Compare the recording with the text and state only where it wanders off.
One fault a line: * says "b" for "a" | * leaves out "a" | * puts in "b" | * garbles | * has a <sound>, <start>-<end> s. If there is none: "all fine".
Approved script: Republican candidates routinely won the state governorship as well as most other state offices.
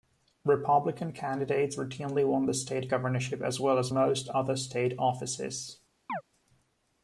* has a chirp, 6.1-6.2 s